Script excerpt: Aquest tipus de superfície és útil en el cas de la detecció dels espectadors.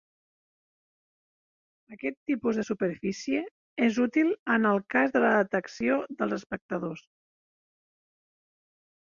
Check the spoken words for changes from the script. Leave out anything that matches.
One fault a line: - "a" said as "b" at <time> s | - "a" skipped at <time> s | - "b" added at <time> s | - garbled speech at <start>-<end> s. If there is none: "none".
none